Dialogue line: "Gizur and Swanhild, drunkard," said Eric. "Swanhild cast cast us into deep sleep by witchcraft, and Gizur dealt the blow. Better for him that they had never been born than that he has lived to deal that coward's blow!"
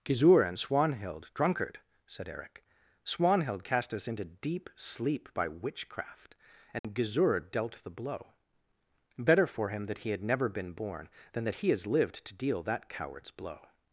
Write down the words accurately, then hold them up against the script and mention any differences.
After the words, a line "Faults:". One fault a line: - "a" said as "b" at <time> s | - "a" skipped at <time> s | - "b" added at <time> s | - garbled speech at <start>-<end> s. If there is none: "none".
"Gizur and Swanhild, drunkard," said Eric. "Swanhild cast us into deep sleep by witchcraft, and Gizur dealt the blow. Better for him that he had never been born than that he has lived to deal that coward's blow!"
Faults:
- "cast" skipped at 3.9 s
- "they" said as "he" at 10.0 s